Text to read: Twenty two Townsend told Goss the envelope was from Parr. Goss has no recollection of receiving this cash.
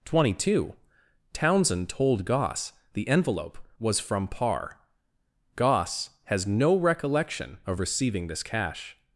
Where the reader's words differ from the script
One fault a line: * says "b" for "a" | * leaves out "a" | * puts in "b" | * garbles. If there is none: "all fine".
all fine